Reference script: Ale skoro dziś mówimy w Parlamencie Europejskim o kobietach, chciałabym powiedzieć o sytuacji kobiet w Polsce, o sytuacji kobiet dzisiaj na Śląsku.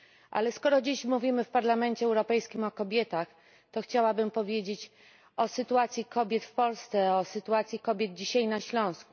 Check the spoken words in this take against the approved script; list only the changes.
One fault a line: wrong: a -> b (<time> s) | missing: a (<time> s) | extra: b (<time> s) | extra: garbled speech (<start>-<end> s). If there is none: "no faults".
extra: to (3.7 s)